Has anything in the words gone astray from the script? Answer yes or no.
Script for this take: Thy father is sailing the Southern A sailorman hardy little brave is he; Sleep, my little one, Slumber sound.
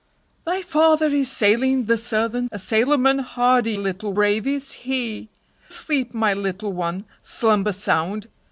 no